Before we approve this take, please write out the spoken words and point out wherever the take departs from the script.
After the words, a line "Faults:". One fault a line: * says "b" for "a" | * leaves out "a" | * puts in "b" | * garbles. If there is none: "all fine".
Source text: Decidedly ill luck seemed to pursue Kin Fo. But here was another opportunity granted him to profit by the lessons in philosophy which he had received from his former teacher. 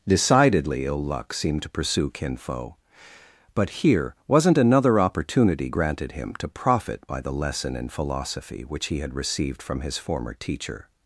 Decidedly ill luck seemed to pursue Kin Fo. But here wasn't another opportunity granted him to profit by the lesson in philosophy which he had received from his former teacher.
Faults:
* says "wasn't" for "was"
* says "lesson" for "lessons"